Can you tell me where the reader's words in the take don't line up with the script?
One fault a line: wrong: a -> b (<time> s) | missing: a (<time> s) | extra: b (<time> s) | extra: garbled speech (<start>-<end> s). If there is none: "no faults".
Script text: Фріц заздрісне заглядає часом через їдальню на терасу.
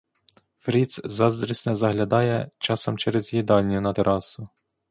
no faults